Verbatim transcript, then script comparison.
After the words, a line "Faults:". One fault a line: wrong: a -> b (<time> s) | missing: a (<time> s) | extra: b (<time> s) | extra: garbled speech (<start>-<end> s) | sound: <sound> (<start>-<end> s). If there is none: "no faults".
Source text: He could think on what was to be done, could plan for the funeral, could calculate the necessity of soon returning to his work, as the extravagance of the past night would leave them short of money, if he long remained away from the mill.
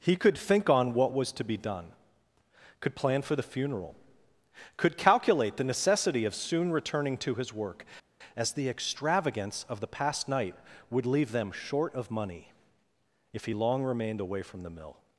He could think on what was to be done, could plan for the funeral, could calculate the necessity of soon returning to his work, as the extravagance of the past night would leave them short of money, if he long remained away from the mill.
Faults:
no faults